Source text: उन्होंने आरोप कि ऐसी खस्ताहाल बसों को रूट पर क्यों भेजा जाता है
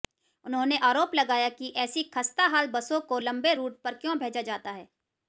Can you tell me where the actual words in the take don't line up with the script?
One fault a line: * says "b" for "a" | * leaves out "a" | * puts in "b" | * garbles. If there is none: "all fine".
* puts in "लगाया"
* puts in "लंबे"